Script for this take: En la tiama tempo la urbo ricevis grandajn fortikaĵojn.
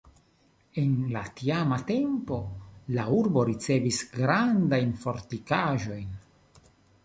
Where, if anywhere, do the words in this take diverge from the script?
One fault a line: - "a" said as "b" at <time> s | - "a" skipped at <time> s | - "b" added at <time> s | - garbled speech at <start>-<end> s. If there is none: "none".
none